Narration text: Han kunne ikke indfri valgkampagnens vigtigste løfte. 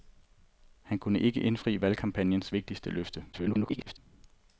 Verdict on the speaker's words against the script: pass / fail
fail